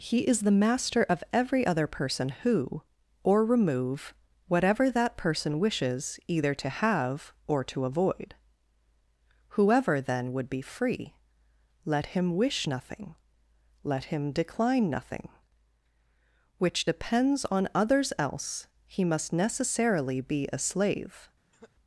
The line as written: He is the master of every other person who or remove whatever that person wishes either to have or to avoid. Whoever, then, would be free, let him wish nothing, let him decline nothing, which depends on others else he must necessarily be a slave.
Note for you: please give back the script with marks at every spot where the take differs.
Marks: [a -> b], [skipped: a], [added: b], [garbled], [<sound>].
He is the master of every other person who or remove whatever that person wishes either to have or to avoid. Whoever, then, would be free, let him wish nothing, let him decline nothing, which depends on others else he must necessarily be a slave. [cough]